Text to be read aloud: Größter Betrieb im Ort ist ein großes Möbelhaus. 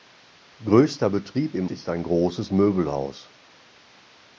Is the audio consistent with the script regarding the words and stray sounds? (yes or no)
no